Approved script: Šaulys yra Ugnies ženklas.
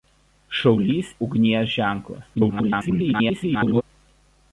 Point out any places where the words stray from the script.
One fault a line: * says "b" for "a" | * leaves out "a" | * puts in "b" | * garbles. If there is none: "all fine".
* leaves out "yra"
* garbles